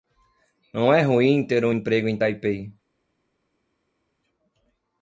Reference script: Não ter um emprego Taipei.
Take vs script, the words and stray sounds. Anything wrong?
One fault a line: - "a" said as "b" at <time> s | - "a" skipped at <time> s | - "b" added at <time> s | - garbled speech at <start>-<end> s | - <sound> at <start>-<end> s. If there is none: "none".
- "é ruim" added at 0.9 s
- "em" added at 2.1 s